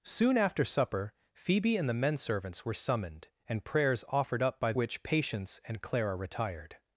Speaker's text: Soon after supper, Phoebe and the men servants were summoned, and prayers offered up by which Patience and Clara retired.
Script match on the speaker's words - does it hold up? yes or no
yes